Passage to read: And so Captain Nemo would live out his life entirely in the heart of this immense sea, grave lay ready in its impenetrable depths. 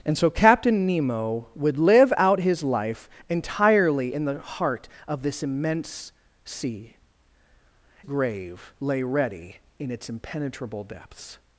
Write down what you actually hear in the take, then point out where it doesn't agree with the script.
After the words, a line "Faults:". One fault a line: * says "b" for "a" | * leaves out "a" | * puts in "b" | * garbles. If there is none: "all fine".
And so Captain Nemo would live out his life entirely in the heart of this immense sea, grave lay ready in its impenetrable depths.
Faults:
all fine